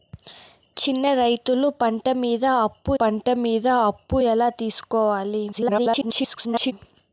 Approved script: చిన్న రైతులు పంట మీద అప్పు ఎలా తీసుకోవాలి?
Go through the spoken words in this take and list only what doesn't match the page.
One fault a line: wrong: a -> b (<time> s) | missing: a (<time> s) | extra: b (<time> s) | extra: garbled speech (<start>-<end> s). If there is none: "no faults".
extra: పంట మీద అప్పు (3.0 s)
extra: garbled speech (5.5-6.7 s)